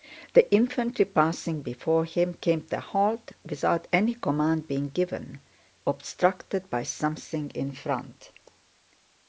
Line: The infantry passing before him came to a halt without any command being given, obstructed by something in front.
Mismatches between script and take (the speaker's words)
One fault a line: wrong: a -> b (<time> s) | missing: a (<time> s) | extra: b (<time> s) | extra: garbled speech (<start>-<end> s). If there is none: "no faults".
no faults